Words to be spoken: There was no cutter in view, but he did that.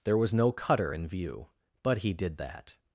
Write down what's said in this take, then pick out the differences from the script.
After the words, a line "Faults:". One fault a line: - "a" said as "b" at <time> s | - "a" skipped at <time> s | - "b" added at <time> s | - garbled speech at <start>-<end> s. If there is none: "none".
There was no cutter in view, but he did that.
Faults:
none